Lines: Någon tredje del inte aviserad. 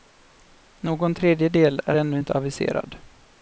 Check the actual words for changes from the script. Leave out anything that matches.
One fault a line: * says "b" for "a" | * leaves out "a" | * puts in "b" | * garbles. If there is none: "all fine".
* puts in "är ännu"